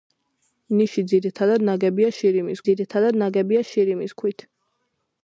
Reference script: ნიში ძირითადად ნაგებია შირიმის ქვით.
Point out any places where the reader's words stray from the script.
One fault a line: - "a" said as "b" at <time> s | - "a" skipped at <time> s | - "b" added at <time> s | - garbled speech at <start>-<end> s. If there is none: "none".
- "ძირითადად ნაგებია შირიმის" added at 2.7 s